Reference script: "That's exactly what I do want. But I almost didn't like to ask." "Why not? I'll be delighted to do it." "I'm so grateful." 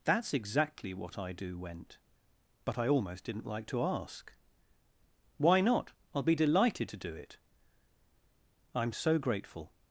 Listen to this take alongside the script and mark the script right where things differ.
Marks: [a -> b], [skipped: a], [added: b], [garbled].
"That's exactly what I do [want. -> went] But I almost didn't like to ask." "Why not? I'll be delighted to do it." "I'm so grateful."